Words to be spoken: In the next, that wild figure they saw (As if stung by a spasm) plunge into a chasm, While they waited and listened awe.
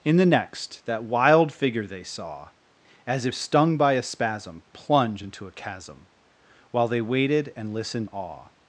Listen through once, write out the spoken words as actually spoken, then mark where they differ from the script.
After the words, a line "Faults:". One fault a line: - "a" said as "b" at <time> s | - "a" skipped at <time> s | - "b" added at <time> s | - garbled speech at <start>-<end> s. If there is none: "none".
In the next, that wild figure they saw (As if stung by a spasm) plunge into a chasm, While they waited and listened awe.
Faults:
none